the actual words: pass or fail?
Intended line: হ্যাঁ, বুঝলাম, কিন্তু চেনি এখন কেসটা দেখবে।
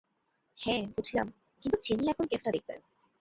pass